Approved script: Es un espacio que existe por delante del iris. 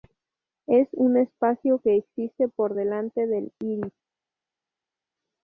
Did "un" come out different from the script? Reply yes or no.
no